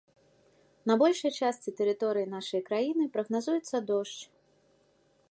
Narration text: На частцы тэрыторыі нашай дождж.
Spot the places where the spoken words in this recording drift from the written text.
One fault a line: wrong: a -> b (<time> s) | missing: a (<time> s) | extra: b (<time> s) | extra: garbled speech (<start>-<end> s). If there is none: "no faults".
extra: большай (1.0 s)
extra: краіны прагназуецца (2.7 s)